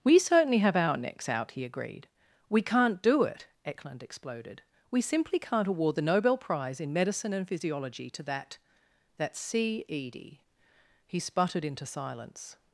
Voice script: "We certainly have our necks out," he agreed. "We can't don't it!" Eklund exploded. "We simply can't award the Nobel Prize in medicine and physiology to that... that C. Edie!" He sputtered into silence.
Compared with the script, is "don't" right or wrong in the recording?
wrong